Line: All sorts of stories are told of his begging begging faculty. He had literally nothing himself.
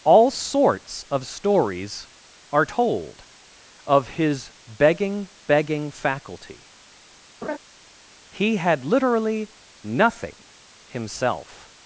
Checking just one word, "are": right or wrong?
right